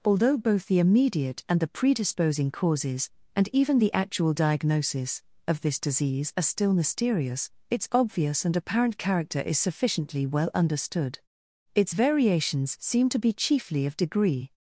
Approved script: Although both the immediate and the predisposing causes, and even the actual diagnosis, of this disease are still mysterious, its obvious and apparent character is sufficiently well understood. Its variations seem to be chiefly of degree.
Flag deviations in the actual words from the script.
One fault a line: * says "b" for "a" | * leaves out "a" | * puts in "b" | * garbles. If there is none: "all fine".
all fine